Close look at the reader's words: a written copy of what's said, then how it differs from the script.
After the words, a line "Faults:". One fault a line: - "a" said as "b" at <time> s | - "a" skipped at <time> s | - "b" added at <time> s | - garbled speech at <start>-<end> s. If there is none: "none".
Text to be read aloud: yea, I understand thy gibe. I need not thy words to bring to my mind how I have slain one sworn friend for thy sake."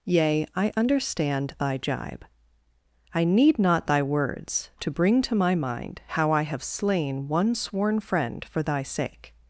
yea, I understand thy gibe. I need not thy words to bring to my mind how I have slain one sworn friend for thy sake."
Faults:
none